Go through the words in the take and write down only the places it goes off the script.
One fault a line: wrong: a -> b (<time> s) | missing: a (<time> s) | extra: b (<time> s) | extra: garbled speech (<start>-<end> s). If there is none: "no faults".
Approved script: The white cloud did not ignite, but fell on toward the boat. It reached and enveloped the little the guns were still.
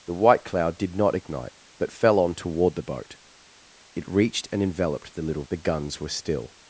no faults